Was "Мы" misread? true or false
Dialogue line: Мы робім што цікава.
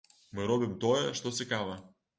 false